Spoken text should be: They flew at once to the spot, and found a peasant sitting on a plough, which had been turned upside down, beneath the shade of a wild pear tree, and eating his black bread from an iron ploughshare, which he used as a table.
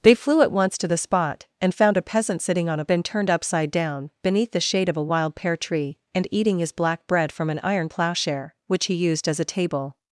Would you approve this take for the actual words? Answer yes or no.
no